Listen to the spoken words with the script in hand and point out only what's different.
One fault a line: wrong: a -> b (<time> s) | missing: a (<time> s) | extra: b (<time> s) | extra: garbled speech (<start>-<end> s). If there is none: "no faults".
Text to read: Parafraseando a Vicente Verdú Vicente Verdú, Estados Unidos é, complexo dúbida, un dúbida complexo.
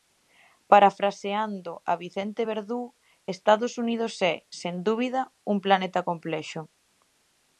missing: Vicente Verdú (2.8 s)
wrong: complexo -> sen (4.6 s)
wrong: dúbida -> planeta (5.6 s)